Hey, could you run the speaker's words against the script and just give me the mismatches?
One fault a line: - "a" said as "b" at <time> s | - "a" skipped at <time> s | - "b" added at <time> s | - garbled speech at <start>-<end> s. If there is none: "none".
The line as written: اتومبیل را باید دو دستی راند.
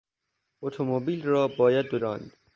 - "دستی" skipped at 2.0 s